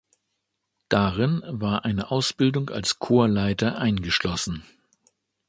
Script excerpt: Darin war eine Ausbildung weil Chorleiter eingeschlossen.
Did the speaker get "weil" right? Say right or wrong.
wrong